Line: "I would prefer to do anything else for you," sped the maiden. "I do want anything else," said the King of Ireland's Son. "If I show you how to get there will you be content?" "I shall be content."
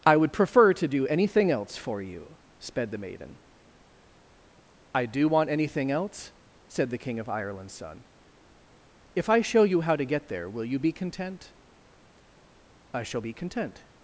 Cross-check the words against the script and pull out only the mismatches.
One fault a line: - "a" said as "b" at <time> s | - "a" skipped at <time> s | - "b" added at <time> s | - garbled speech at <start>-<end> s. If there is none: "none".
none